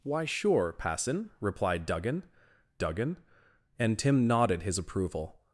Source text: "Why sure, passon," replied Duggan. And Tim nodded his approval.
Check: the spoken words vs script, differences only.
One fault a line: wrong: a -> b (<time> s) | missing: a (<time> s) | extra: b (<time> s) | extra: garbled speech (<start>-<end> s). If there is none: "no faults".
extra: Duggan (2.8 s)